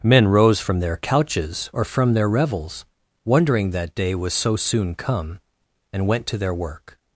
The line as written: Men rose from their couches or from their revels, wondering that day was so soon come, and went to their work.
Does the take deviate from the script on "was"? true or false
false